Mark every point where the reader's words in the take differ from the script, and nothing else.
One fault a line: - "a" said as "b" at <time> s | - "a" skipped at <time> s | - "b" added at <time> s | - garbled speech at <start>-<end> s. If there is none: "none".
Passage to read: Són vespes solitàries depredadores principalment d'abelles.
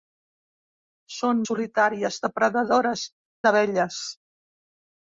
- "vespes" skipped at 1.4 s
- "principalment" skipped at 3.1 s